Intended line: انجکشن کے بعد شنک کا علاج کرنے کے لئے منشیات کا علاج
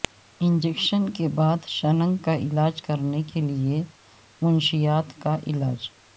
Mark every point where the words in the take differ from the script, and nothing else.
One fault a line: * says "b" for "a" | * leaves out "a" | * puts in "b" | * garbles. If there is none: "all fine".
all fine